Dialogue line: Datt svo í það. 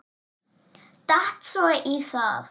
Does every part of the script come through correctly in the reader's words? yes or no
yes